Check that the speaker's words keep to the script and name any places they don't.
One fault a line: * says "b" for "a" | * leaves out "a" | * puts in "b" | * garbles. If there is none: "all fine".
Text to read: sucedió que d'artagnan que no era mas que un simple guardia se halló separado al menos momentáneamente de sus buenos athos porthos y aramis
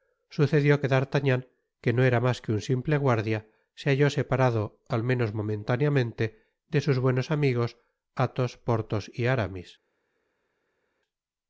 * puts in "amigos"